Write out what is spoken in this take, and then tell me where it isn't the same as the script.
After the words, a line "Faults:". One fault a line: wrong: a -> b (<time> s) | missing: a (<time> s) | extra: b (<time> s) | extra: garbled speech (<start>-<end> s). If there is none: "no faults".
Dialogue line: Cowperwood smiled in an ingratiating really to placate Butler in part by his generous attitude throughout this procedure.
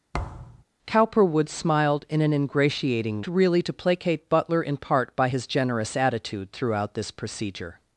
Cowperwood smiled in an ingratiating really to placate Butler in part by his generous attitude throughout this procedure.
Faults:
no faults